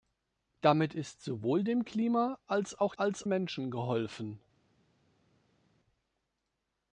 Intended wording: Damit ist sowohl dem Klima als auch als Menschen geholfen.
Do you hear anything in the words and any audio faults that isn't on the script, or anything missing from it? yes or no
no